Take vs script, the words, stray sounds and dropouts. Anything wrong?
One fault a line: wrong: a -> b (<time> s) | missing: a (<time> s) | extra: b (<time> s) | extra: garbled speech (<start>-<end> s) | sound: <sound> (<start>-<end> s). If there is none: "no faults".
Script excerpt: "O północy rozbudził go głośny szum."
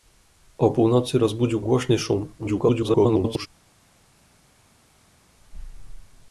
missing: go (1.6 s)
extra: garbled speech (2.4-3.5 s)